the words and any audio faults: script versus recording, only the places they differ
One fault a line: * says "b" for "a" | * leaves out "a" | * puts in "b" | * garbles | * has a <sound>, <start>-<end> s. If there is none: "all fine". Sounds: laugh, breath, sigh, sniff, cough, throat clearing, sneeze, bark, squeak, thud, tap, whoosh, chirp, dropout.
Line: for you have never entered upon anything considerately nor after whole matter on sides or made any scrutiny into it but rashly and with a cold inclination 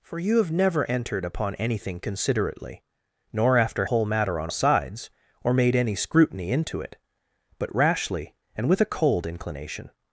all fine